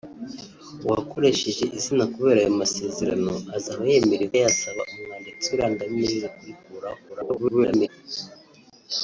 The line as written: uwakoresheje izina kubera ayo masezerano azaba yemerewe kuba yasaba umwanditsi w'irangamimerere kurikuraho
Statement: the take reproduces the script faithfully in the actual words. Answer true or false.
false